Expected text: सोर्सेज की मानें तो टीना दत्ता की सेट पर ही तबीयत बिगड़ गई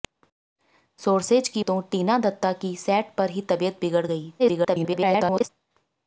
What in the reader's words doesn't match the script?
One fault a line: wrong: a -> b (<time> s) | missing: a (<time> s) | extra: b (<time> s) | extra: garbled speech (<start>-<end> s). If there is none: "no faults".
missing: मानें (1.6 s)
extra: garbled speech (4.4-5.5 s)